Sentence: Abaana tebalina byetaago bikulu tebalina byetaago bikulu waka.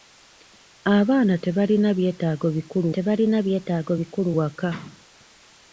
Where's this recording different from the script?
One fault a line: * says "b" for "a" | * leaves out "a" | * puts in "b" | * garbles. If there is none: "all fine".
all fine